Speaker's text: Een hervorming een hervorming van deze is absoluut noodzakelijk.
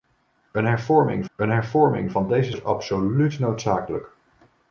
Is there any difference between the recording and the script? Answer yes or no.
no